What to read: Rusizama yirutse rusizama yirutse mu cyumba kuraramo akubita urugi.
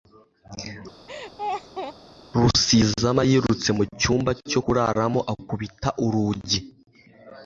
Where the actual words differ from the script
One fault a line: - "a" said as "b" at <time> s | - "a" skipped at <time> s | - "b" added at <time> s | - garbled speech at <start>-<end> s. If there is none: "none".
- "rusizama yirutse" skipped at 3.7 s
- "cyo" added at 4.5 s